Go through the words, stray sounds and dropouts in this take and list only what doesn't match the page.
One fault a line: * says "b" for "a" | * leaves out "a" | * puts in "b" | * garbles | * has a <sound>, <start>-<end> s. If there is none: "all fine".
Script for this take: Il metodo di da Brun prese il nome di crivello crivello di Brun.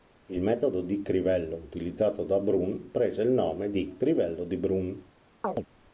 * puts in "crivello utilizzato"
* leaves out "crivello"
* has a chirp, 5.4-5.7 s